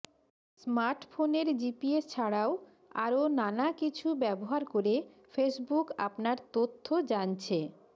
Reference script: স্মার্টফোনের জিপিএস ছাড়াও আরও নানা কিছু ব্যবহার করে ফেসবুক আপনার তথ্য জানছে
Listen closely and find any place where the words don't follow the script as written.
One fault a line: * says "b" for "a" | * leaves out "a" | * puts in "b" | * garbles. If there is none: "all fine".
all fine